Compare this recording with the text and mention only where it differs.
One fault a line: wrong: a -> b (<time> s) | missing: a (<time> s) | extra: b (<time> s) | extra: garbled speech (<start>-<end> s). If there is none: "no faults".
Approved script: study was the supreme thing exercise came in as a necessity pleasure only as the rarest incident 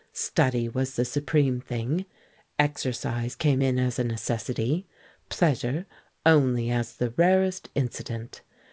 no faults